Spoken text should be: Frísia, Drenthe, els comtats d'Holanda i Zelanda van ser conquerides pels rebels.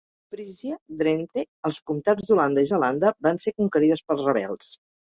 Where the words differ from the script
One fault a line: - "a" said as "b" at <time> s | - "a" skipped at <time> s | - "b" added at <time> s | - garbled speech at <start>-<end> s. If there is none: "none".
none